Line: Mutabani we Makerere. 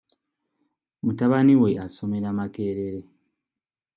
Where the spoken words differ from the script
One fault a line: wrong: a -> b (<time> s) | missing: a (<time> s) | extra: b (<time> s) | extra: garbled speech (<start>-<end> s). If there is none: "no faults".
extra: asomera (1.9 s)